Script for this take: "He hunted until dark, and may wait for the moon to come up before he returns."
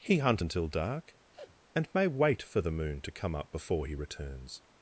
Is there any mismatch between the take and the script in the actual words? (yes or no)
yes